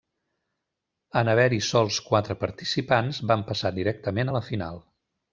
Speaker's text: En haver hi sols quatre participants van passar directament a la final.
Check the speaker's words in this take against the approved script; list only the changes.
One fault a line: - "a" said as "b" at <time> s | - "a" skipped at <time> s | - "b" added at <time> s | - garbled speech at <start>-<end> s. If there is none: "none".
none